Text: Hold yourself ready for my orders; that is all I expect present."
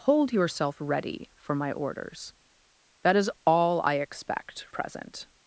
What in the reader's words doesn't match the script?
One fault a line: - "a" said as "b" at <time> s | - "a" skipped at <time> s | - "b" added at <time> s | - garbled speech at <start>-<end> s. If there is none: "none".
none